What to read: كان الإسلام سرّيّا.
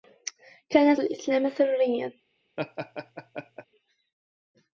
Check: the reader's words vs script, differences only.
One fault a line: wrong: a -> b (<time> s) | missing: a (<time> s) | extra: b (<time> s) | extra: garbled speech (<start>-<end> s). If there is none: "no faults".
no faults